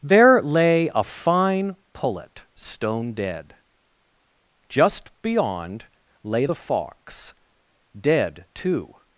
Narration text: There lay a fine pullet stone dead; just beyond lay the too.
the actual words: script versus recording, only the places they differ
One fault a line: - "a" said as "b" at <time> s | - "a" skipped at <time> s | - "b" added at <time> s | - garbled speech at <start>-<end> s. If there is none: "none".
- "fox dead" added at 6.5 s